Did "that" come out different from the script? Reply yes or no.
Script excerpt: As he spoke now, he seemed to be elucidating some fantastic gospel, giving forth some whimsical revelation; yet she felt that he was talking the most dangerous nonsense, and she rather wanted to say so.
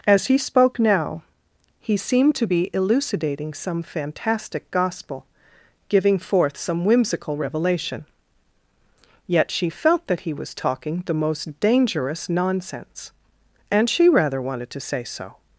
no